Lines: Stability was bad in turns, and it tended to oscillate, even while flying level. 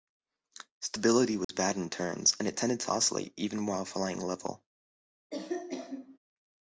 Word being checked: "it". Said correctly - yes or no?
yes